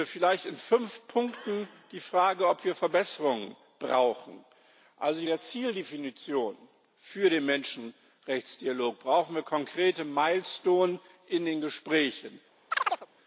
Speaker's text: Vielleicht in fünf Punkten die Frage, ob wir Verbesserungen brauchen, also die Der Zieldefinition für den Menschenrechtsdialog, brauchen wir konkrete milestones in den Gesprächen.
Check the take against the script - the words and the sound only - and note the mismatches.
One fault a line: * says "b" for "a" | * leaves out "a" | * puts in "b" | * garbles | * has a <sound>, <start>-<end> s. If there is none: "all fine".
* has a chirp, 12.7-13.1 s